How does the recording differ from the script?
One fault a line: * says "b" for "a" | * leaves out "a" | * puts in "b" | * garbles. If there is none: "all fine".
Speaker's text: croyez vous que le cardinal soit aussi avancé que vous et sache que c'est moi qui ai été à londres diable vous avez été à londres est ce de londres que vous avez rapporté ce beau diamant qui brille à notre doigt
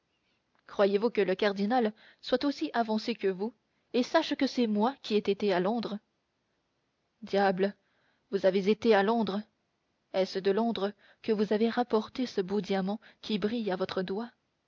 * says "votre" for "notre"